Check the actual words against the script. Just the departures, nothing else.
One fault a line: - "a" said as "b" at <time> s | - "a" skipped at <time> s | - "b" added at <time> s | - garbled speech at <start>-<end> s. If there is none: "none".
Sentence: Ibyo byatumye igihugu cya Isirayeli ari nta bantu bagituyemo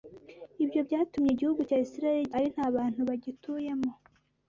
none